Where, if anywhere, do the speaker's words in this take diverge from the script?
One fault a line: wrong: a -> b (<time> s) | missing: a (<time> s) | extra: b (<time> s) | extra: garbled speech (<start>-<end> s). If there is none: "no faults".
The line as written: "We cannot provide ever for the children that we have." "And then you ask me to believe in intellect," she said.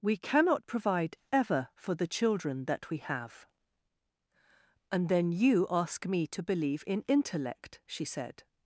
no faults